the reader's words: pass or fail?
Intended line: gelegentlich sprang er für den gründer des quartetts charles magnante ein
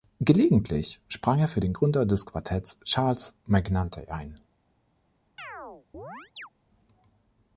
pass